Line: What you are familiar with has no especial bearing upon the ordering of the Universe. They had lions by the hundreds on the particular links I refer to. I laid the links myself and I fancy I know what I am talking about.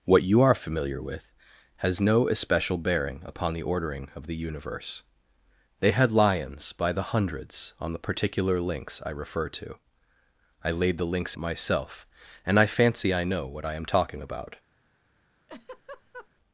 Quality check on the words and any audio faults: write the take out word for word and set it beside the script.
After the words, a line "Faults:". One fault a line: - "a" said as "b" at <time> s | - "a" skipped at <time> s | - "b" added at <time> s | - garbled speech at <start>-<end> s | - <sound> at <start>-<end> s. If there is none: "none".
What you are familiar with has no especial bearing upon the ordering of the Universe. They had lions by the hundreds on the particular links I refer to. I laid the links myself and I fancy I know what I am talking about.
Faults:
- laugh at 15.5-16.3 s